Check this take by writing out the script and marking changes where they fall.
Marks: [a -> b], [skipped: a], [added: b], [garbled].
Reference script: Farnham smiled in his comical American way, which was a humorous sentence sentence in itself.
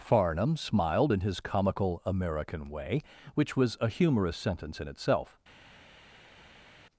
Farnham smiled in his comical American way, which was a humorous sentence [skipped: sentence] in itself.